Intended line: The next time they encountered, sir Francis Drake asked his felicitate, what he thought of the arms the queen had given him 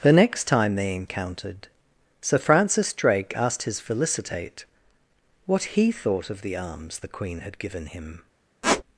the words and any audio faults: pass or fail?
fail